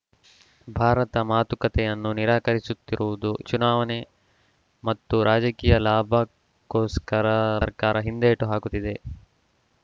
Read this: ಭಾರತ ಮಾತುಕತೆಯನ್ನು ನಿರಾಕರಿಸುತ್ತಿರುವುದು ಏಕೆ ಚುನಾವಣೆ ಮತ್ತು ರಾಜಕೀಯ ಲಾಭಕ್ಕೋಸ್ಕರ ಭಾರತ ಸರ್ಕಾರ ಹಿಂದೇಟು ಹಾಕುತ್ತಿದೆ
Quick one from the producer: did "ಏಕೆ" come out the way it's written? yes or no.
no